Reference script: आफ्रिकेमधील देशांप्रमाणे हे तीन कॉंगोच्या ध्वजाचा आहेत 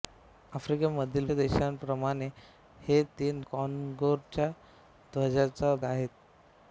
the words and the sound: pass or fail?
pass